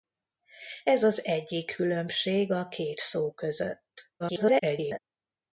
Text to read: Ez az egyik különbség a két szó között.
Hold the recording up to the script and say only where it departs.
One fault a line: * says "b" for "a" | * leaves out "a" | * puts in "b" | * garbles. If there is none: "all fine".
* garbles